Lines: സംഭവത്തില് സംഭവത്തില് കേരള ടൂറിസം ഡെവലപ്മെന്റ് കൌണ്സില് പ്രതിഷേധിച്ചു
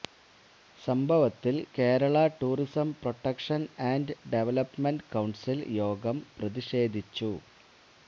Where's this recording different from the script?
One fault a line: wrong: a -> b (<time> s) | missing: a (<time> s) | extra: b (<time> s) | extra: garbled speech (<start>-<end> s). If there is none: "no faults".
missing: സംഭവത്തില് (1.6 s)
extra: പ്രൊട്ടക്ഷന് ആന്ഡ് (3.0 s)
extra: യോഗം (5.8 s)